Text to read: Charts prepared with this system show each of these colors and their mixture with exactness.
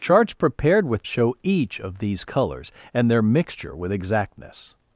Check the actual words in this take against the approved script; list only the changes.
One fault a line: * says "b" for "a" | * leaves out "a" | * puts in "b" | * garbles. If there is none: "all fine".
* leaves out "this system"